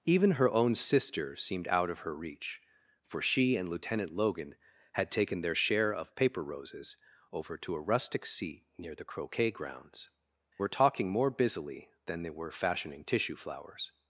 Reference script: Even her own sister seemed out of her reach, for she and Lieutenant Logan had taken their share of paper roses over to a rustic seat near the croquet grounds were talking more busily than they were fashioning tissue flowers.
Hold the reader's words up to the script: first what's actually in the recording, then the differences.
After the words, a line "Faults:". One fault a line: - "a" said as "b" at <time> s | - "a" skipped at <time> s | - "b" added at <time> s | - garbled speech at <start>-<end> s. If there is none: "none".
Even her own sister seemed out of her reach, for she and Lieutenant Logan had taken their share of paper roses over to a rustic seat near the croquet grounds were talking more busily than they were fashioning tissue flowers.
Faults:
none